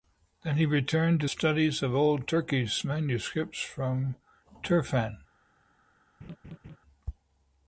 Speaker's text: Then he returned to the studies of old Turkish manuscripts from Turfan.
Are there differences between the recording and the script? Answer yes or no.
yes